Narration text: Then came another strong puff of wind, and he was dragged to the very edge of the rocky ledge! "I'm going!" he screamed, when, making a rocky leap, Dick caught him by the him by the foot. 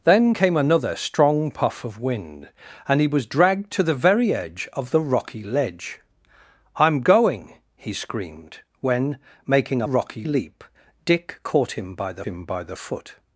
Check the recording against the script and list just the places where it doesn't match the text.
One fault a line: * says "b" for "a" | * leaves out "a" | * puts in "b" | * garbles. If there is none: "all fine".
all fine